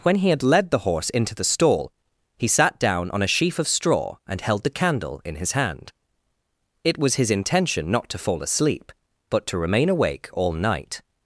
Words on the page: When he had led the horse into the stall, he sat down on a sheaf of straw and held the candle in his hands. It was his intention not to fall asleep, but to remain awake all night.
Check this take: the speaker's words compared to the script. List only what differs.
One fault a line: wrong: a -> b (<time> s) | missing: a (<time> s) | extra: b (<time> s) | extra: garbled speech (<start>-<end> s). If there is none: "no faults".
wrong: hands -> hand (5.5 s)